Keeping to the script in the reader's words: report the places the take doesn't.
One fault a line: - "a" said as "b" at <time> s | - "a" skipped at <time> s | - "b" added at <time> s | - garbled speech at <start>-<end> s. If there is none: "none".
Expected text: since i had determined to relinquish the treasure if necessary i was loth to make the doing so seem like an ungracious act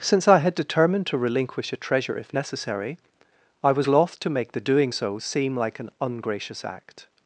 - "the" said as "a" at 1.7 s